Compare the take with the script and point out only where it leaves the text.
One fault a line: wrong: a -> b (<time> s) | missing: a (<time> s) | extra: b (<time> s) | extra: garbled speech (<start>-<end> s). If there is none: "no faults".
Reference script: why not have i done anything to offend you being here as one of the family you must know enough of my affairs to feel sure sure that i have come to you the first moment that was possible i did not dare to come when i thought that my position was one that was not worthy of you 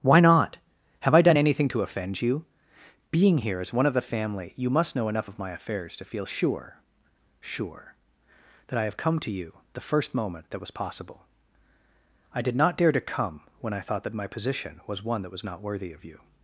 no faults